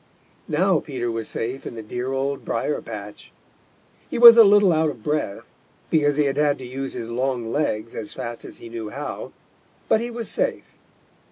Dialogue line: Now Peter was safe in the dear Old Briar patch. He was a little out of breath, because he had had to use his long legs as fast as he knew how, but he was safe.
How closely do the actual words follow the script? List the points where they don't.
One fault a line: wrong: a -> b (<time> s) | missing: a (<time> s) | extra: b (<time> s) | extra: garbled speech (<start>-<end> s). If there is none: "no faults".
no faults